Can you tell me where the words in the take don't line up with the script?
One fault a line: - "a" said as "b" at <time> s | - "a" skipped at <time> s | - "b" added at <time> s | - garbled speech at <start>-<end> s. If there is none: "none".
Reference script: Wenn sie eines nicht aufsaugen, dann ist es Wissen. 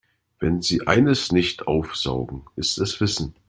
- "dann" skipped at 2.5 s